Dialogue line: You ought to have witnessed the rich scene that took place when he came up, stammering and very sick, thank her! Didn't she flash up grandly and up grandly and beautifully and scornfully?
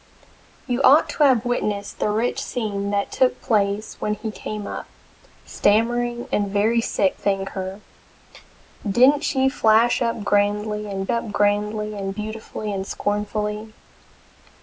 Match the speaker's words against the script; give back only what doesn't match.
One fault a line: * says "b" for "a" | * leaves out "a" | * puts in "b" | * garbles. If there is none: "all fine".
all fine